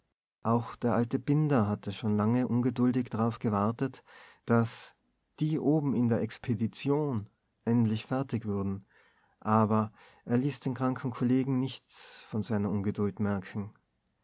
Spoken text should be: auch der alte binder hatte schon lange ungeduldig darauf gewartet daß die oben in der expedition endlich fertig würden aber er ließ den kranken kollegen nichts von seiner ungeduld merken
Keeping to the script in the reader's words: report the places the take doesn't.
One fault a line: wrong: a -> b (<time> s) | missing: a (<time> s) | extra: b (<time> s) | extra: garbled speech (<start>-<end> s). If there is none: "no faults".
no faults